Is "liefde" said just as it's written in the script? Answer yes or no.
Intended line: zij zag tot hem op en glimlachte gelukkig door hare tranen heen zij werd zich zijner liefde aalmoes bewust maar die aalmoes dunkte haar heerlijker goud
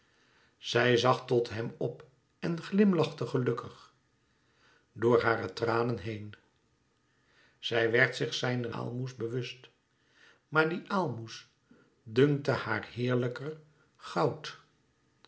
no